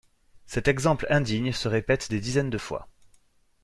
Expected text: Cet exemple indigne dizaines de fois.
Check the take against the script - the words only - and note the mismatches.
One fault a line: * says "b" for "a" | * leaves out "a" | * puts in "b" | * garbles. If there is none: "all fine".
* puts in "se répète des"